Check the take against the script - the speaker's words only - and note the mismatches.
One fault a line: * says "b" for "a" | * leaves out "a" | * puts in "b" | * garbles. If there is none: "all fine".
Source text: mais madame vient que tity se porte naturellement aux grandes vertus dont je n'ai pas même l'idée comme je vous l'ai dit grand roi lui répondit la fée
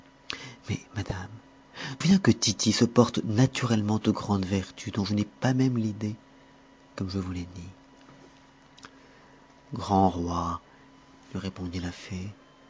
all fine